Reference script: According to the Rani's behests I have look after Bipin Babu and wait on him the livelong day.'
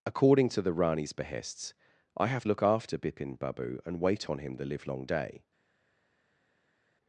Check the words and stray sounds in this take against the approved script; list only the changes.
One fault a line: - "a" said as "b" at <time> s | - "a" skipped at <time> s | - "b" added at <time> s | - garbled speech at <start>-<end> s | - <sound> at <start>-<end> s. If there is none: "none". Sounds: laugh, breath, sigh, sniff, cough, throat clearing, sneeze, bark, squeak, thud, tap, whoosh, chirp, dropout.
none